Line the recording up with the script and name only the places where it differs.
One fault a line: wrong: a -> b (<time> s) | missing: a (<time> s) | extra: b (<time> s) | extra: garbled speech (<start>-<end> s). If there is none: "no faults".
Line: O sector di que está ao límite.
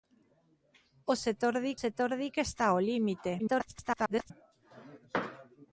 extra: sector di (1.8 s)
extra: garbled speech (3.4-4.3 s)